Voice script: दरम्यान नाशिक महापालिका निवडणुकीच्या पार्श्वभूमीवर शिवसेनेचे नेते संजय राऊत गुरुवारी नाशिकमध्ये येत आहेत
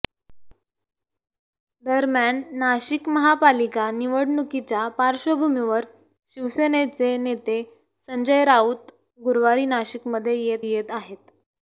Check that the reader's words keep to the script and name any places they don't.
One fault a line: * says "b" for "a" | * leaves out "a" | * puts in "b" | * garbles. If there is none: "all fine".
* puts in "येत"